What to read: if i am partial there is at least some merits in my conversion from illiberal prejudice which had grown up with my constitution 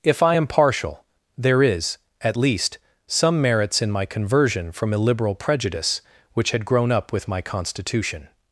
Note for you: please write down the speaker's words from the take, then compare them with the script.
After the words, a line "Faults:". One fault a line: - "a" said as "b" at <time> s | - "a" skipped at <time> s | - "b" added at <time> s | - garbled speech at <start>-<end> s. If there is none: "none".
if i am partial there is at least some merits in my conversion from illiberal prejudice which had grown up with my constitution
Faults:
none